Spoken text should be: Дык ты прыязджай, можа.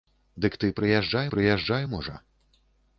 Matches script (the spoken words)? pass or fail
fail